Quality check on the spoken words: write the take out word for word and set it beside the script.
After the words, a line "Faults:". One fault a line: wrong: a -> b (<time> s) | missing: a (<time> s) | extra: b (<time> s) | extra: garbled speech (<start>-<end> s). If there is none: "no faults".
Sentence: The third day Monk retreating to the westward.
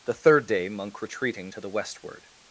The third day Monk retreating to the westward.
Faults:
no faults